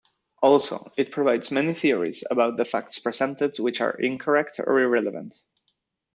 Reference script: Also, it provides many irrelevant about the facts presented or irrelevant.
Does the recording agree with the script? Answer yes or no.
no